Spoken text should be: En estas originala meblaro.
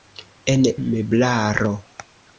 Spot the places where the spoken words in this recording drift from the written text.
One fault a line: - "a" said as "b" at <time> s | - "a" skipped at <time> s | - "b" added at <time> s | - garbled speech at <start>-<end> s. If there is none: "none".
- "estas originala" skipped at 0.6 s